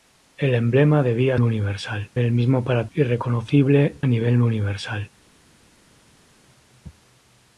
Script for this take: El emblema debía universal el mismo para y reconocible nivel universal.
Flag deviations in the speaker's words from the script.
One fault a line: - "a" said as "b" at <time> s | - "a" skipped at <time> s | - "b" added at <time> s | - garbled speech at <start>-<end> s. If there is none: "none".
none